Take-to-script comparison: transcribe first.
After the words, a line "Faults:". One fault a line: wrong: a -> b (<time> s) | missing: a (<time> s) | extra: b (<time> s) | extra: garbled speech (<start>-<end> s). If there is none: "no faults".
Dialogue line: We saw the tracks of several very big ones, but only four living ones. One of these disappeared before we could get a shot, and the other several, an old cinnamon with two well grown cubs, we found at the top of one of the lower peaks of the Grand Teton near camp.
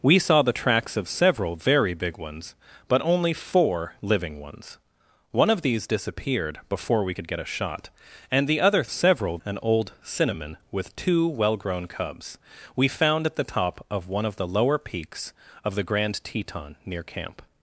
We saw the tracks of several very big ones, but only four living ones. One of these disappeared before we could get a shot, and the other several, an old cinnamon with two well grown cubs, we found at the top of one of the lower peaks of the Grand Teton near camp.
Faults:
no faults